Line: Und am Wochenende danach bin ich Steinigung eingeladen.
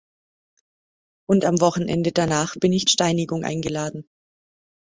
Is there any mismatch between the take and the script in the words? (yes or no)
no